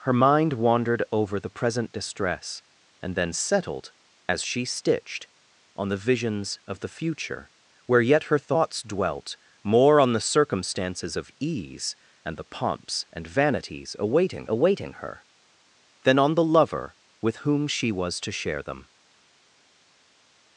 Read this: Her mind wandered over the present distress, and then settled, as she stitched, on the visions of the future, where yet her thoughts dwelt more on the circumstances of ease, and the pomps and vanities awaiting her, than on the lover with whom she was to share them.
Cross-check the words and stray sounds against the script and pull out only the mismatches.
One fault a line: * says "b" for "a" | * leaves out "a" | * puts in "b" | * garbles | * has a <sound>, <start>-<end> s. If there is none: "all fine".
* puts in "awaiting"